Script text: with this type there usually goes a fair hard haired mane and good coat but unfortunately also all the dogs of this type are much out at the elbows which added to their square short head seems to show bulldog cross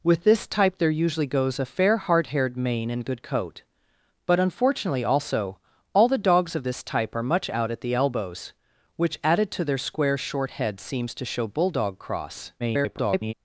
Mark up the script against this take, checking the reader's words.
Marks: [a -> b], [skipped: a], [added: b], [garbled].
with this type there usually goes a fair hard haired mane and good coat but unfortunately also all the dogs of this type are much out at the elbows which added to their square short head seems to show bulldog cross [garbled]